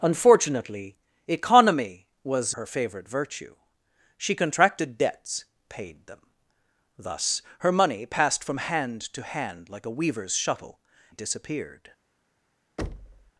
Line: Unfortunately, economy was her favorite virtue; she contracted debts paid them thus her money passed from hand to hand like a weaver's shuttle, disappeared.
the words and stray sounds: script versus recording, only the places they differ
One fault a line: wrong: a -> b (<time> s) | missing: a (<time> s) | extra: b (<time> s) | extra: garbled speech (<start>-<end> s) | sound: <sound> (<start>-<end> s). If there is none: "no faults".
sound: thud (12.8-13.3 s)